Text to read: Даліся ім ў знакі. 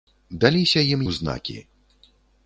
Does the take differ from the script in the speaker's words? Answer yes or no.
no